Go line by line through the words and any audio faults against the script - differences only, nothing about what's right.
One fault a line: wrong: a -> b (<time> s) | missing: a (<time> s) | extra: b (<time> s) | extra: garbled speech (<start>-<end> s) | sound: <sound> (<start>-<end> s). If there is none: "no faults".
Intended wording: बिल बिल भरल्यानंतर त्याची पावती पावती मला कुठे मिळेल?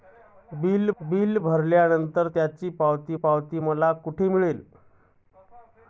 no faults